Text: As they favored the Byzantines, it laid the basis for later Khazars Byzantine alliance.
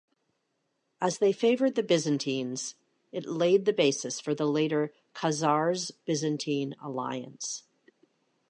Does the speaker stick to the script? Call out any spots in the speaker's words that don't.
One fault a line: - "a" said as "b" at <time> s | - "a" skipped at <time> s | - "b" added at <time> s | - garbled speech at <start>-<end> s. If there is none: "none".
- "the" added at 4.3 s